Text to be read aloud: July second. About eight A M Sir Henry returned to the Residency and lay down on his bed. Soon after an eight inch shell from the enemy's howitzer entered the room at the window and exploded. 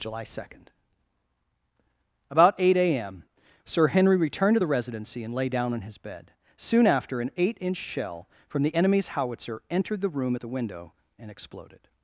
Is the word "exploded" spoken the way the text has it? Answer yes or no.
yes